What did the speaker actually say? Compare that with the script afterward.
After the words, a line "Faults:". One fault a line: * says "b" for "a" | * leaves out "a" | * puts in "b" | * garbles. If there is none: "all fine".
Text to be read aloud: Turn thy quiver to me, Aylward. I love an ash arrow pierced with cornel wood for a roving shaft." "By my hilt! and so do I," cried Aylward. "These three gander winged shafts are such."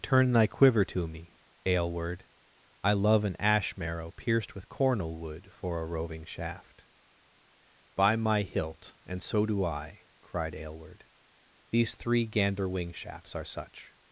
Turn thy quiver to me, Aylward. I love an ash marrow pierced with cornel wood for a roving shaft." "By my hilt! and so do I," cried Aylward. "These three gander wing shafts are such."
Faults:
* says "marrow" for "arrow"
* says "wing" for "winged"